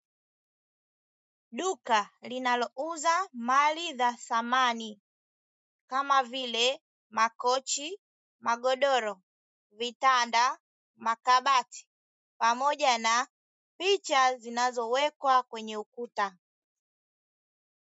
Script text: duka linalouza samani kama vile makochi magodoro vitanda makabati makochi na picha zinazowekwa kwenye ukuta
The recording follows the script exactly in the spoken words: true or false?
false